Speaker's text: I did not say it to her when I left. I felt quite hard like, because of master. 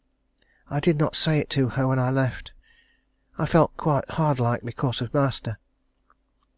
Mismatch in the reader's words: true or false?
false